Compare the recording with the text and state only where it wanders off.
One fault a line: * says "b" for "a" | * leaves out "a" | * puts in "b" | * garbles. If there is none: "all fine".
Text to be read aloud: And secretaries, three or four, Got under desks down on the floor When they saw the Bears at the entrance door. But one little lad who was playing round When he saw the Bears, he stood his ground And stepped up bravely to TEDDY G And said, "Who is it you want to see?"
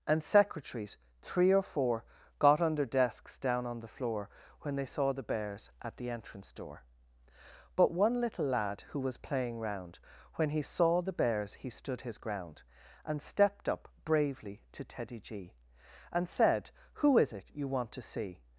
all fine